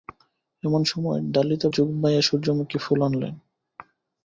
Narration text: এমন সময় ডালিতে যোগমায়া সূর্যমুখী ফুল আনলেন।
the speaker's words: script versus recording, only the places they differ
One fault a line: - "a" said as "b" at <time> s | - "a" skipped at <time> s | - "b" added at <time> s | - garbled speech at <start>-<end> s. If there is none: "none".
none